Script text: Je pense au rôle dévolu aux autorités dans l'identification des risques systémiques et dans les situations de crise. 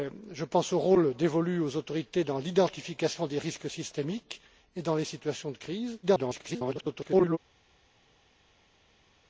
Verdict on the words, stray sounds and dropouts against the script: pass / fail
fail